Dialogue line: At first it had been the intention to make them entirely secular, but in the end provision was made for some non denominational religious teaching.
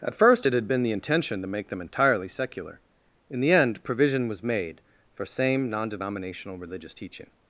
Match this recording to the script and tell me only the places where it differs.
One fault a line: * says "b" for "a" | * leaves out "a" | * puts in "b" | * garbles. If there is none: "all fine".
* leaves out "but"
* says "same" for "some"